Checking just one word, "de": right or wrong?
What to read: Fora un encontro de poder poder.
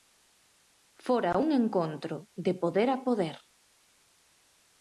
right